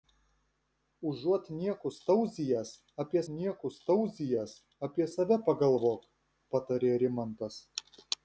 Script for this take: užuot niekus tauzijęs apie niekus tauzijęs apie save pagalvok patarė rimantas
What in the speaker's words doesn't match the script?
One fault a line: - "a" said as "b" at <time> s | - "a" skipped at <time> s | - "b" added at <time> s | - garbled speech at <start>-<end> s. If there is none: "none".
none